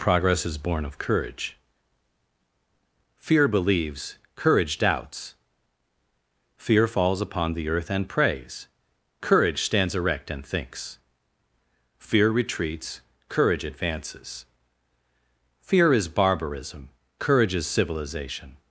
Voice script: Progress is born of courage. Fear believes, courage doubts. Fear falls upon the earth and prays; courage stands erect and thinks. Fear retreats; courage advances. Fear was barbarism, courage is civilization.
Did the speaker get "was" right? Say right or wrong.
wrong